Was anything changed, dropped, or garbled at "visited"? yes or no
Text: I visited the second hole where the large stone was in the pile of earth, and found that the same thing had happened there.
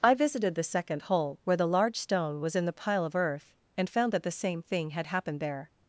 no